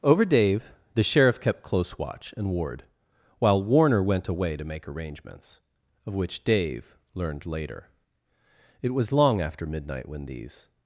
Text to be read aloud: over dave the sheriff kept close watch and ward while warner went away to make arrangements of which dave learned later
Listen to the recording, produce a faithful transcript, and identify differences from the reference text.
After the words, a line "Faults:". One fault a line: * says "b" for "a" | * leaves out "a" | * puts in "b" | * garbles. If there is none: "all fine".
over dave the sheriff kept close watch and ward while warner went away to make arrangements of which dave learned later it was long after midnight when these
Faults:
* puts in "it was long after midnight when these"